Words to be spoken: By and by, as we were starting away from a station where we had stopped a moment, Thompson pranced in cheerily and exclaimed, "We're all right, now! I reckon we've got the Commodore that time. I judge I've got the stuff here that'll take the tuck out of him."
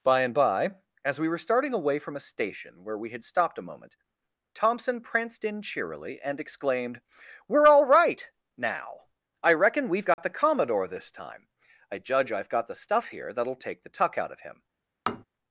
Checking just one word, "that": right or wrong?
wrong